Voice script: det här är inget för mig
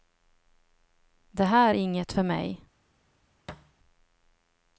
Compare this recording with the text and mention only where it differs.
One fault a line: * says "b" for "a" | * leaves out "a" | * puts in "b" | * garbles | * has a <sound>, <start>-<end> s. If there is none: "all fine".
* has a thud, 3.5-3.7 s